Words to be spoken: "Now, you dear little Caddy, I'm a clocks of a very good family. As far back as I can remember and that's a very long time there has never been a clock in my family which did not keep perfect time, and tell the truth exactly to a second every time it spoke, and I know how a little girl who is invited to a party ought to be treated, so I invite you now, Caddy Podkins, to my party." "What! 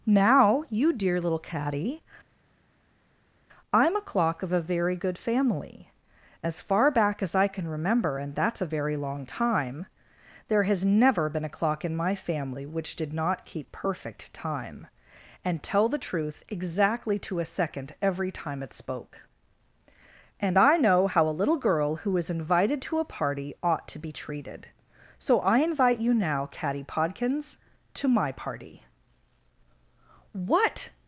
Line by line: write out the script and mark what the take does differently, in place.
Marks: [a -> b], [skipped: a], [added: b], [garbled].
"Now, you dear little Caddy, I'm a [clocks -> clock] of a very good family. As far back as I can remember and that's a very long time there has never been a clock in my family which did not keep perfect time, and tell the truth exactly to a second every time it spoke, and I know how a little girl who is invited to a party ought to be treated, so I invite you now, Caddy Podkins, to my party." "What!